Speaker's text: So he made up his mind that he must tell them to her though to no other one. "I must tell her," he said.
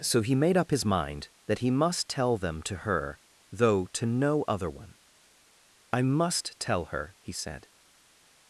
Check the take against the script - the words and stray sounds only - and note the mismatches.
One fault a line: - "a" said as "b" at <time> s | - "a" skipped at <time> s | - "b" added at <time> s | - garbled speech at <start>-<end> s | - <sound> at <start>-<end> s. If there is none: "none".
none